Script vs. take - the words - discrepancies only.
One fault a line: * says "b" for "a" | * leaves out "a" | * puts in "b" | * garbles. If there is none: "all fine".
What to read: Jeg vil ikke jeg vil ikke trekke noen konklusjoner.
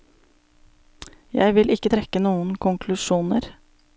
* leaves out "jeg vil ikke"